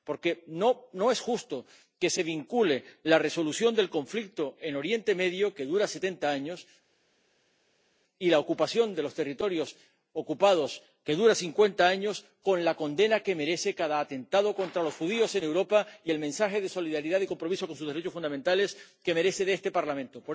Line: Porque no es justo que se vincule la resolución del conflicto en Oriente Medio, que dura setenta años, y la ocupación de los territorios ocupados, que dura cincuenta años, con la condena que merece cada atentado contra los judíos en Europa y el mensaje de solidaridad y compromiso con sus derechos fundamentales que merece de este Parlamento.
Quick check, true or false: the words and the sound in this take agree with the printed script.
true